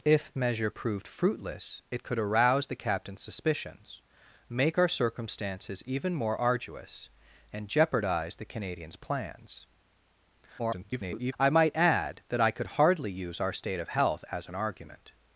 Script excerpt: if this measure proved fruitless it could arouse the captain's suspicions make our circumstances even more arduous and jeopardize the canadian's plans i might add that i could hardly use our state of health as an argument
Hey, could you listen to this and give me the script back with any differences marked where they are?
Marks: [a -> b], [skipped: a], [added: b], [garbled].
if [skipped: this] measure proved fruitless it could arouse the captain's suspicions make our circumstances even more arduous and jeopardize the canadian's plans [garbled] i might add that i could hardly use our state of health as an argument